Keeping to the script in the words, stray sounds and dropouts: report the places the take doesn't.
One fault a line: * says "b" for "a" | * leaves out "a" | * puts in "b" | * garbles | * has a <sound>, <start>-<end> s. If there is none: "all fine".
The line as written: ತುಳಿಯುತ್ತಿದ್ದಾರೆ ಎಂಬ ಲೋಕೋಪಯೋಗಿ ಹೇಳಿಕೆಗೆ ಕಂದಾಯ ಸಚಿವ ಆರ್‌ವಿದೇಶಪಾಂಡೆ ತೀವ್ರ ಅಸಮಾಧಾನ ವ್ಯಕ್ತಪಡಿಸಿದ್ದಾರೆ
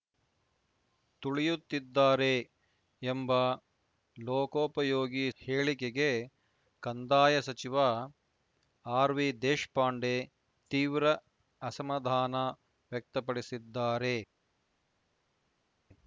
all fine